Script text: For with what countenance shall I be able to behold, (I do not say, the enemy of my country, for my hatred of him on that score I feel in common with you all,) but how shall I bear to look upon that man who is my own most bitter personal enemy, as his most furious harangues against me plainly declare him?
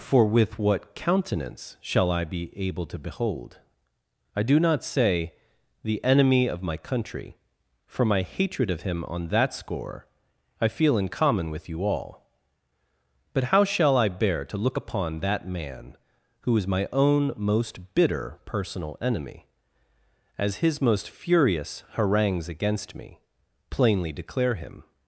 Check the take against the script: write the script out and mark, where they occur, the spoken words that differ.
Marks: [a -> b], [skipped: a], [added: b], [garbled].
For with what countenance shall I be able to behold, (I do not say, the enemy of my country, for my hatred of him on that score I feel in common with you all,) but how shall I bear to look upon that man who is my own most bitter personal enemy, as his most furious harangues against me plainly declare him?